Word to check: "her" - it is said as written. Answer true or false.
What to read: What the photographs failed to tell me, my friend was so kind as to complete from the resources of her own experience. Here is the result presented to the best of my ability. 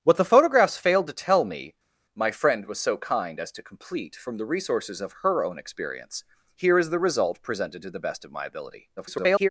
true